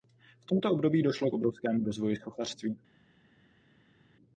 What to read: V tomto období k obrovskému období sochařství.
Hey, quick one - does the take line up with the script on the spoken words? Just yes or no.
no